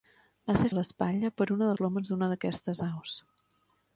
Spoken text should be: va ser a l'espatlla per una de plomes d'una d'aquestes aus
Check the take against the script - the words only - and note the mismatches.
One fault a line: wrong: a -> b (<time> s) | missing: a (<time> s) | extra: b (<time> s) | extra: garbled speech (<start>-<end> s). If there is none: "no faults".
no faults